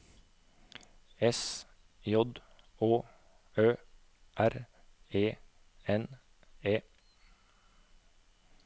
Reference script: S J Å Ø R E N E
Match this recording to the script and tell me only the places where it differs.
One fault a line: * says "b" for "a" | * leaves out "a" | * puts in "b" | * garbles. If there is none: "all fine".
all fine